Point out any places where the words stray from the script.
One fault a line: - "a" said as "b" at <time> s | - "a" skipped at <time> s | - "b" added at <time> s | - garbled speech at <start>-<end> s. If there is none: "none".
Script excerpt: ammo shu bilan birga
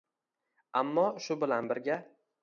none